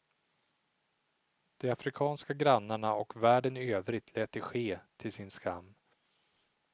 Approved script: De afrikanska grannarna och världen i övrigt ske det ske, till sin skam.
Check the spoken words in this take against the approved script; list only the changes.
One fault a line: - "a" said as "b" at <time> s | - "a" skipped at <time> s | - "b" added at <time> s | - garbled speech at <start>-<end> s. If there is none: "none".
- "ske" said as "lät" at 4.2 s